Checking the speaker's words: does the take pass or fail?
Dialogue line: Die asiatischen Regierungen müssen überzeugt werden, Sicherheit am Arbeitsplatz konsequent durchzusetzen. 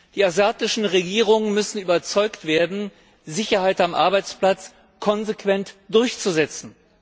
pass